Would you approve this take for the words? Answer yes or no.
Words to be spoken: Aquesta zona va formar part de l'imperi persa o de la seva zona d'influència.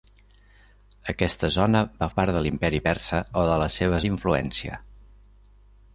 no